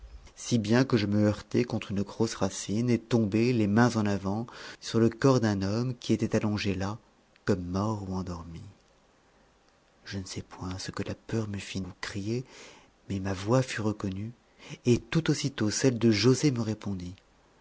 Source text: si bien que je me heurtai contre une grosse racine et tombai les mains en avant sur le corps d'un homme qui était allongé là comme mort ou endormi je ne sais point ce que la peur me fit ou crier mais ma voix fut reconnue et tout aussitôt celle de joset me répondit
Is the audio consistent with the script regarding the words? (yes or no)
yes